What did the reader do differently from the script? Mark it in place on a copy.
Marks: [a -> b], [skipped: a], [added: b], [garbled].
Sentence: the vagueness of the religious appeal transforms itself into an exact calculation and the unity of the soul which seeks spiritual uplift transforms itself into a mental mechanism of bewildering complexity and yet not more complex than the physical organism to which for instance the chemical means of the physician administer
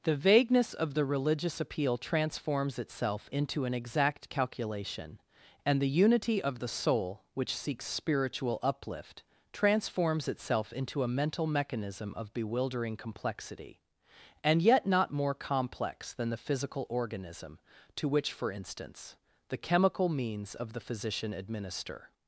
the vagueness of the religious appeal transforms itself into an exact calculation and the unity of the soul which seeks spiritual uplift transforms itself into a mental mechanism of bewildering complexity and yet not more complex than the physical organism to which for instance the chemical means of the physician administer